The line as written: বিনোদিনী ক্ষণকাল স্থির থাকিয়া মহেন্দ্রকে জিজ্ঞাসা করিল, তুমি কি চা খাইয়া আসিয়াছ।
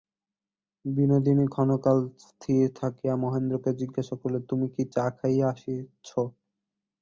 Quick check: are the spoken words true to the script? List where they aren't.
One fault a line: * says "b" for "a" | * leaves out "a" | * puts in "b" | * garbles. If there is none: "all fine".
all fine